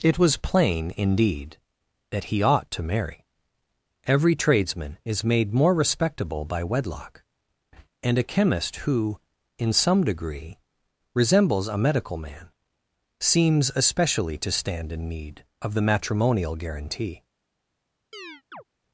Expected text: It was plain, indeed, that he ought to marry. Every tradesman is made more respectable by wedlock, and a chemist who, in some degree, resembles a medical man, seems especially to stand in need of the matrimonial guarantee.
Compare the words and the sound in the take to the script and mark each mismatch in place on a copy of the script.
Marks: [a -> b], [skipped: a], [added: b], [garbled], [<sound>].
It was plain, indeed, that he ought to marry. Every tradesman is made more respectable by wedlock, and a chemist who, in some degree, resembles a medical man, seems especially to stand in need of the matrimonial guarantee. [chirp]